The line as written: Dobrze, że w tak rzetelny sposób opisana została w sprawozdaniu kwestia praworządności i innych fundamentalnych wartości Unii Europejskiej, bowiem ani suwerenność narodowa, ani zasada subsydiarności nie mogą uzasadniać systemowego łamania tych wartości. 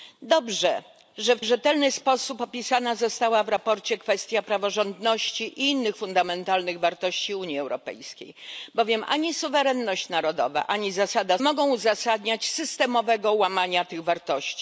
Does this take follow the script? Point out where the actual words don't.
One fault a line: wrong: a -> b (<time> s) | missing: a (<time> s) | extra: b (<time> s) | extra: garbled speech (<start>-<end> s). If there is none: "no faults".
missing: tak (1.4 s)
missing: subsydiarności nie (11.4 s)